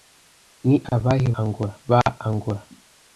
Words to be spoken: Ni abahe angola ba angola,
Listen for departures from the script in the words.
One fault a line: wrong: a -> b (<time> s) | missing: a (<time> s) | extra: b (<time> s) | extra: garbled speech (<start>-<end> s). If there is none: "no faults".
no faults